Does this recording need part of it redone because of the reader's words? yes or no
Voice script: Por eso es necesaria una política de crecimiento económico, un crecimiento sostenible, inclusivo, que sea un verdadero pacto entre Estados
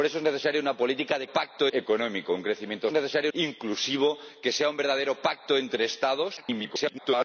yes